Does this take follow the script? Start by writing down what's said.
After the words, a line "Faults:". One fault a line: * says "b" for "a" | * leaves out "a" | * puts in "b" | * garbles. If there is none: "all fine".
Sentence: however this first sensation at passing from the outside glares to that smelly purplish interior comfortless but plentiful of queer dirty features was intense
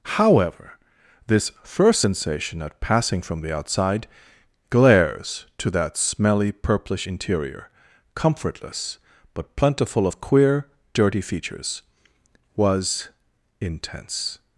however this first sensation at passing from the outside glares to that smelly purplish interior comfortless but plentiful of queer dirty features was intense
Faults:
all fine